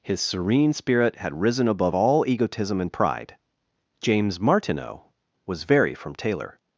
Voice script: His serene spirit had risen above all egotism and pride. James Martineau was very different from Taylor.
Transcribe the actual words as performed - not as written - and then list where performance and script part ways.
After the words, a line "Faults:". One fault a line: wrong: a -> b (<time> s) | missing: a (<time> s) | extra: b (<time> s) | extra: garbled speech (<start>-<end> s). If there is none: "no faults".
His serene spirit had risen above all egotism and pride. James Martineau was very from Taylor.
Faults:
missing: different (5.9 s)